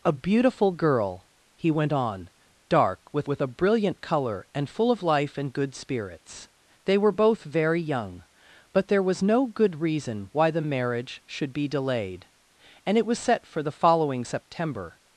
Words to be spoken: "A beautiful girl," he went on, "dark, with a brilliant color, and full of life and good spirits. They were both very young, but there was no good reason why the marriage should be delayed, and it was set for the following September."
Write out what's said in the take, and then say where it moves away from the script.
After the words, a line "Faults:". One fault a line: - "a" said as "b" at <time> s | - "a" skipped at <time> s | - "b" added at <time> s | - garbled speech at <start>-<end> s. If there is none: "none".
"A beautiful girl," he went on, "dark, with with a brilliant color, and full of life and good spirits. They were both very young, but there was no good reason why the marriage should be delayed, and it was set for the following September."
Faults:
- "with" added at 3.3 s